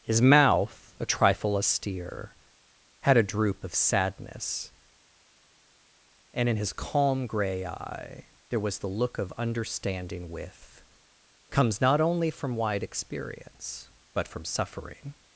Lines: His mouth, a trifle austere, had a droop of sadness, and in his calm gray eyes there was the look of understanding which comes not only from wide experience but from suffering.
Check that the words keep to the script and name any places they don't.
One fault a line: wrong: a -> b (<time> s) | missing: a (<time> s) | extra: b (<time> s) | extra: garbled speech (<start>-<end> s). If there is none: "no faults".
wrong: eyes -> eye (7.6 s)
wrong: which -> with (10.3 s)